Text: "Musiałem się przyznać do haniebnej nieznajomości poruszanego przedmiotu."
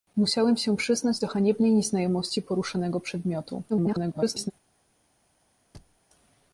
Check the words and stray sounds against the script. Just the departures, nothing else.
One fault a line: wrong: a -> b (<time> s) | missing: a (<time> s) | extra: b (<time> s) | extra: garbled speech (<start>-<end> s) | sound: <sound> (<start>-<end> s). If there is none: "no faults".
extra: garbled speech (3.7-4.5 s)
sound: thud (5.7-6.0 s)